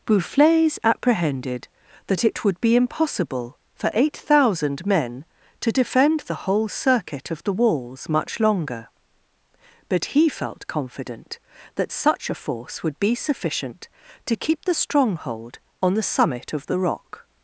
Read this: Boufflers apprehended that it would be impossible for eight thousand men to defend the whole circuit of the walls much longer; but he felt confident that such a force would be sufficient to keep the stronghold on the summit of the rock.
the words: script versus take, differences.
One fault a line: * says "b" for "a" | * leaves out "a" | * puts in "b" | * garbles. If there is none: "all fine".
all fine